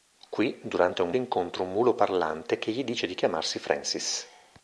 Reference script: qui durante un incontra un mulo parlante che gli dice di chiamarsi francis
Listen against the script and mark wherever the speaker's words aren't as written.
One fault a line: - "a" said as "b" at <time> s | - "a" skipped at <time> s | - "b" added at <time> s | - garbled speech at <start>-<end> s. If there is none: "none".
none